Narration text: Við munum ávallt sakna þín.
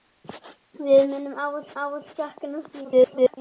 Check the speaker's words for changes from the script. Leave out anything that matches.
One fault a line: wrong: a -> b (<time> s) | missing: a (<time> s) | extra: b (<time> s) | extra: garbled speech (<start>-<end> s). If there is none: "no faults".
extra: ávallt (1.8 s)
extra: garbled speech (2.8-3.4 s)